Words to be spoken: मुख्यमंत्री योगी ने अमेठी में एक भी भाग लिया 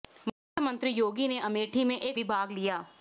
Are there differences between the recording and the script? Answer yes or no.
no